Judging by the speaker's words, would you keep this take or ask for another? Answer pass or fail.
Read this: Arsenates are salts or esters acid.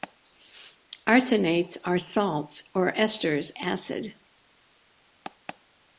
pass